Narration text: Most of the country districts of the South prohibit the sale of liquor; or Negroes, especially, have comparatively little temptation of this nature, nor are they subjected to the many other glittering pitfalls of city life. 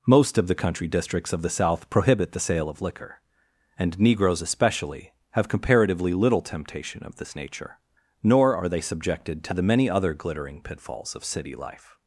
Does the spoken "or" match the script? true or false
false